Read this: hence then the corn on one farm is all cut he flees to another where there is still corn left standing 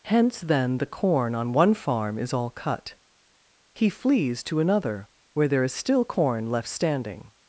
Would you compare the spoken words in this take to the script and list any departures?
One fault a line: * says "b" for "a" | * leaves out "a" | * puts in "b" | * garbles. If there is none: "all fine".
all fine